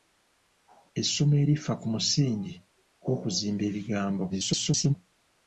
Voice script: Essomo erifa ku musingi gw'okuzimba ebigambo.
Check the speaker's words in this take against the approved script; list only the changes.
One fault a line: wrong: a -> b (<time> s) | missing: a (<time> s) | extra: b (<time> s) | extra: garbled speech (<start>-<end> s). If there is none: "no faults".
extra: garbled speech (4.3-5.0 s)